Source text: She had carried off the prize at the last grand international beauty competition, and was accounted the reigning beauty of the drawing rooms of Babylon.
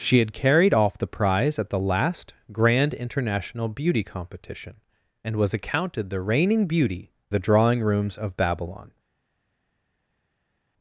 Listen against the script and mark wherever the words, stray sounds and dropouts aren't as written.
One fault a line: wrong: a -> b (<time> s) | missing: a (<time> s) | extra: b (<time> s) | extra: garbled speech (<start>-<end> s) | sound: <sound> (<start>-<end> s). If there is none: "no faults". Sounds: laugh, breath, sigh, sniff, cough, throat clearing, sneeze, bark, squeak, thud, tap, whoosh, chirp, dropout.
missing: of (7.1 s)